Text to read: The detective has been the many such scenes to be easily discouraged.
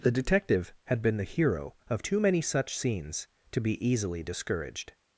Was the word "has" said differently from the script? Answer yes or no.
yes